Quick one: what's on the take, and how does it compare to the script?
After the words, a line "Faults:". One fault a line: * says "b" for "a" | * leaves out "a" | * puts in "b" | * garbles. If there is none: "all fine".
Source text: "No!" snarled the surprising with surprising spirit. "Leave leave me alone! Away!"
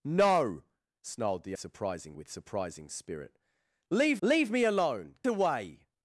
"No!" snarled the surprising with surprising spirit. "Leave leave me alone! Away!"
Faults:
all fine